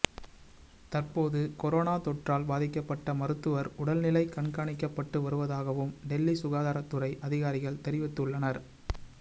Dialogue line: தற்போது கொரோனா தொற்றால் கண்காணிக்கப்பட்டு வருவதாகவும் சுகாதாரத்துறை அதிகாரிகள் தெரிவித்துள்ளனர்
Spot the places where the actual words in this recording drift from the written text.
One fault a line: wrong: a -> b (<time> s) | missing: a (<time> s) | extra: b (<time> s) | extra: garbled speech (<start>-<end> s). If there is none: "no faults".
extra: பாதிக்கப்பட்ட மருத்துவர் உடல்நிலை (2.5 s)
extra: டெல்லி (6.1 s)